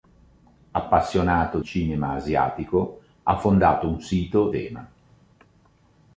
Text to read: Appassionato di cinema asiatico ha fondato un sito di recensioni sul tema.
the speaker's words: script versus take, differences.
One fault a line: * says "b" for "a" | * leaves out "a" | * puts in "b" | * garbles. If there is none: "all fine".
* leaves out "di"
* leaves out "di recensioni sul"